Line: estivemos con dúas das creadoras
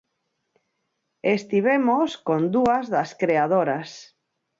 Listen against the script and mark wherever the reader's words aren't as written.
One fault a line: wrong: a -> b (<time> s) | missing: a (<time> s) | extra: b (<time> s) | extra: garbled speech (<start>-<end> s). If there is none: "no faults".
no faults